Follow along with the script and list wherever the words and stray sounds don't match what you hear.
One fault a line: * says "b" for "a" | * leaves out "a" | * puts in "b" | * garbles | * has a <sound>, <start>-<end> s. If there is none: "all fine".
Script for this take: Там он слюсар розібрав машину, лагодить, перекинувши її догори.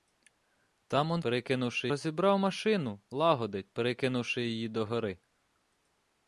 * says "перекинувши" for "слюсар"